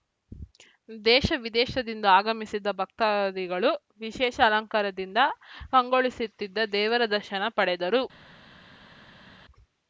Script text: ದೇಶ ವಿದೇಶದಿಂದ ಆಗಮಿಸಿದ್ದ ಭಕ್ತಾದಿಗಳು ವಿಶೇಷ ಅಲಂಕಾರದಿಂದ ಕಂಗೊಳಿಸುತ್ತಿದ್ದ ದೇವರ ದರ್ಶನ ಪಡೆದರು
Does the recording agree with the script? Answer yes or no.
yes